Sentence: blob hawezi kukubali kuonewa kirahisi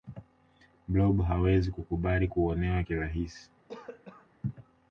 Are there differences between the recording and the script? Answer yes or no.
no